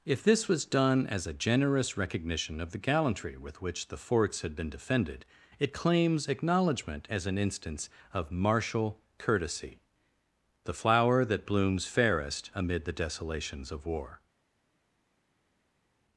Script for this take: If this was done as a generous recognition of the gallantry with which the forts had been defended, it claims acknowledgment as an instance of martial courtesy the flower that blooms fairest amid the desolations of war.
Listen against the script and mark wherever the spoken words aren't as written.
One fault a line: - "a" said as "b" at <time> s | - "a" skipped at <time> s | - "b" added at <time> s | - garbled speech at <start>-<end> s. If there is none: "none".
none